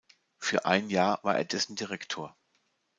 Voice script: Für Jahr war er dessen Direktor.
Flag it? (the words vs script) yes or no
yes